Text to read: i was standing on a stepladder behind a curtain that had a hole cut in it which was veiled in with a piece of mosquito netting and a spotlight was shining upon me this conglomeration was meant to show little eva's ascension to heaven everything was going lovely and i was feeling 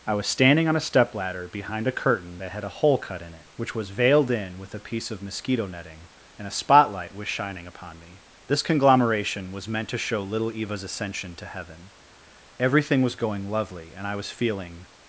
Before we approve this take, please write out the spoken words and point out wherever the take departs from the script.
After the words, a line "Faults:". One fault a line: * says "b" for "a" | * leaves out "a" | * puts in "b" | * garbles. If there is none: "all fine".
i was standing on a stepladder behind a curtain that had a hole cut in it which was veiled in with a piece of mosquito netting and a spotlight was shining upon me this conglomeration was meant to show little eva's ascension to heaven everything was going lovely and i was feeling
Faults:
all fine